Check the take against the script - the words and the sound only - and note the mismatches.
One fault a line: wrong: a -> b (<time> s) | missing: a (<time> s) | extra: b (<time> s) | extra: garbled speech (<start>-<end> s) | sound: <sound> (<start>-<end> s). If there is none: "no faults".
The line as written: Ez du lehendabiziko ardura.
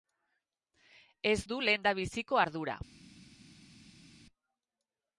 no faults